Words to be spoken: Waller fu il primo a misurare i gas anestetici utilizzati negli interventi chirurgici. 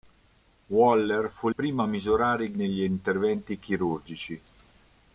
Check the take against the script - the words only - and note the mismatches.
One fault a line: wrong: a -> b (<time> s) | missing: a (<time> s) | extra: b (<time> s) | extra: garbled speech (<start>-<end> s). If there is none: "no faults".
missing: il (1.5 s)
missing: gas anestetici utilizzati (2.5 s)